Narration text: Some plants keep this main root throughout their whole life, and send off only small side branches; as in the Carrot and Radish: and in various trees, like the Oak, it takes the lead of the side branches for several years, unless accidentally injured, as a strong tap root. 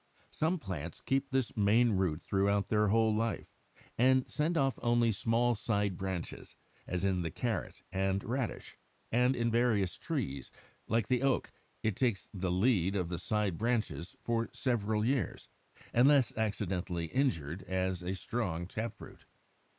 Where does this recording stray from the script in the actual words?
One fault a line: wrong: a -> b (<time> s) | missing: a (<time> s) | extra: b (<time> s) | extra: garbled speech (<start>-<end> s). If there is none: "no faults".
no faults